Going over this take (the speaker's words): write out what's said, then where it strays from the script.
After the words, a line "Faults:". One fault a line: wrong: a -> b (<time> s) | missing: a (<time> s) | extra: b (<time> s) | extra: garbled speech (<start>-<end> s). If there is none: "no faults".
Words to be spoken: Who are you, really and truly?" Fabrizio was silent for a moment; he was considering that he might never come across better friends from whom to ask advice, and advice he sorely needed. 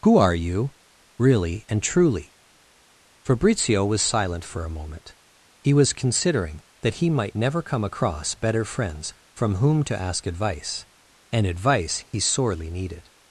Who are you, really and truly?" Fabrizio was silent for a moment; he was considering that he might never come across better friends from whom to ask advice, and advice he sorely needed.
Faults:
no faults